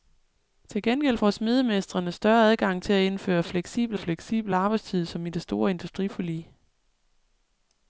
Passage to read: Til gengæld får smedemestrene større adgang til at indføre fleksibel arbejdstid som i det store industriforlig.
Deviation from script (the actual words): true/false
true